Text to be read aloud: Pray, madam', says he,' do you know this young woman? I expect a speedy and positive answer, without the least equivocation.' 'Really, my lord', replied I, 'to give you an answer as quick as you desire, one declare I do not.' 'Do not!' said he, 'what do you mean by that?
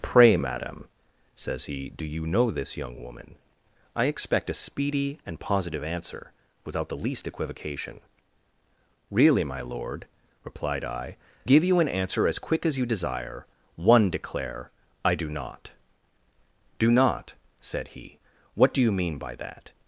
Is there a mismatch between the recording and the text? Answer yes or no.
yes